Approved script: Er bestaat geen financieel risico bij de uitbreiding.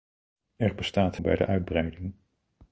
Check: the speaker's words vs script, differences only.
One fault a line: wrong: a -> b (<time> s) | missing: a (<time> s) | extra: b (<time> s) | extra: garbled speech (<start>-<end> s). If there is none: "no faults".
missing: geen financieel risico (1.2 s)